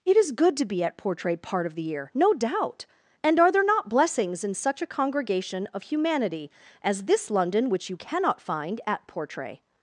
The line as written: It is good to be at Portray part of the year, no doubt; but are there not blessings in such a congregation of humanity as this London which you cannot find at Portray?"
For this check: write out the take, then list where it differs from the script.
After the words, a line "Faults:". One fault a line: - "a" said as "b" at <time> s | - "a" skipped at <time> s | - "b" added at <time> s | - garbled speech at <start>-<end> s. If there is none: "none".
It is good to be at Portray part of the year, no doubt; and are there not blessings in such a congregation of humanity as this London which you cannot find at Portray?"
Faults:
- "but" said as "and" at 3.2 s